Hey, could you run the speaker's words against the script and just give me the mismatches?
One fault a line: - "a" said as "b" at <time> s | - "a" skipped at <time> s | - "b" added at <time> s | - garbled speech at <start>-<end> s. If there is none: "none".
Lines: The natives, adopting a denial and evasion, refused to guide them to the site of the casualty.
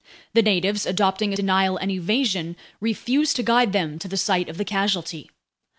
none